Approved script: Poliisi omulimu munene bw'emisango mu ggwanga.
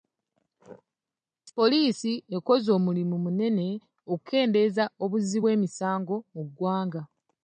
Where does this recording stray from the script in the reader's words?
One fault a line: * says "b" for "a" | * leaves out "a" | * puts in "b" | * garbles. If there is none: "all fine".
* puts in "ekoze"
* puts in "okukendeeza obuzzi"